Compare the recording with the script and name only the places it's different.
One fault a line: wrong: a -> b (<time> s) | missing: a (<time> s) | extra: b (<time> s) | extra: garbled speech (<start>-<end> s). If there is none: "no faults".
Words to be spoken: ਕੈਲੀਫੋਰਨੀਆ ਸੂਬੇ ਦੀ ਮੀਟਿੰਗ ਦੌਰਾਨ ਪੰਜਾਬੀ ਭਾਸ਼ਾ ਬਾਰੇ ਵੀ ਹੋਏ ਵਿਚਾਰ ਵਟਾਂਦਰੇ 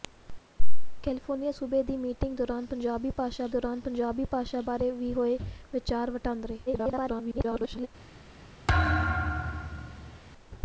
extra: ਦੌਰਾਨ ਪੰਜਾਬੀ ਭਾਸ਼ਾ (3.5 s)
extra: garbled speech (6.7-7.9 s)